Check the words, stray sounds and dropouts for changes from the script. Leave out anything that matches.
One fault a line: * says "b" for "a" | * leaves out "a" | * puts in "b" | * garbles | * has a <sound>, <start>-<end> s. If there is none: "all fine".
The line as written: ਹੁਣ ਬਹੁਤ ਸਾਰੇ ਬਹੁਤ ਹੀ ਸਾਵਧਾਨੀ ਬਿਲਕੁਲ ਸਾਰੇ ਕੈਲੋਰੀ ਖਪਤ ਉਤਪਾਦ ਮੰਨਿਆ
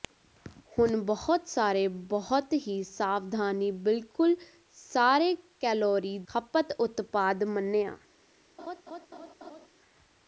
* has a laugh, 8.6-9.7 s